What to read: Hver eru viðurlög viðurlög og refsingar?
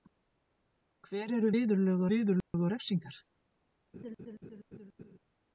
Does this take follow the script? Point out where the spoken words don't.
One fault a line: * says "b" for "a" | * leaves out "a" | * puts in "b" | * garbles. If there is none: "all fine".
all fine